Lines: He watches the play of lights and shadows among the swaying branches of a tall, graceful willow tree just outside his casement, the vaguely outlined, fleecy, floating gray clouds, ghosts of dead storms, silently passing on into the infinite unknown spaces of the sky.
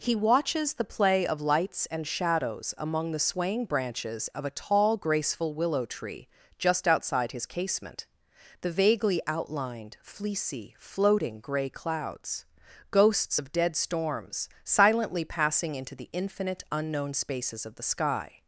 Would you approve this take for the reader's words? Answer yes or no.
no